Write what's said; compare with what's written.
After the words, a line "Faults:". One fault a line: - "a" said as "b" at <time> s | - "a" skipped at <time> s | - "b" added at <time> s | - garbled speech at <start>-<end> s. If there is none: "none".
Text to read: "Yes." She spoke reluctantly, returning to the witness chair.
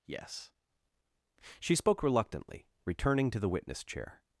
"Yes." She spoke reluctantly, returning to the witness chair.
Faults:
none